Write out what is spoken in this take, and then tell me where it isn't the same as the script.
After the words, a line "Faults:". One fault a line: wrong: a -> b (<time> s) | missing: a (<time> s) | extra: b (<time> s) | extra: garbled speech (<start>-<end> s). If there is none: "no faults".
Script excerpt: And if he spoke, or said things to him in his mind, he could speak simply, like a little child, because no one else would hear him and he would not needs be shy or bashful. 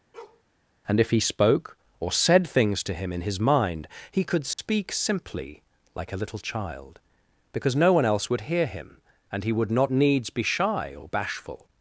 And if he spoke, or said things to him in his mind, he could speak simply, like a little child, because no one else would hear him and he would not needs be shy or bashful.
Faults:
no faults